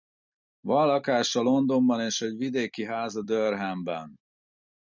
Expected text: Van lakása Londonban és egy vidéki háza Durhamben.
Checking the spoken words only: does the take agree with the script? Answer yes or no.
yes